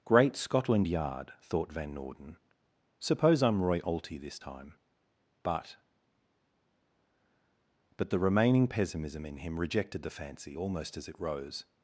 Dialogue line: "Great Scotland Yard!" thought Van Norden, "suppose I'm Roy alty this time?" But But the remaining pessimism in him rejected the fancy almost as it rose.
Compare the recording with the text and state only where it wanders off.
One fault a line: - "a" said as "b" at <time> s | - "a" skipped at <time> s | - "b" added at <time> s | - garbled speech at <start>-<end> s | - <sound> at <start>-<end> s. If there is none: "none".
none